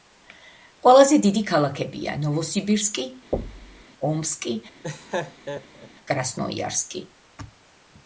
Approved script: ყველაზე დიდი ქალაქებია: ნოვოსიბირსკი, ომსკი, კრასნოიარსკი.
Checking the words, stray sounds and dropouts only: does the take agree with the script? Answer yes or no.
no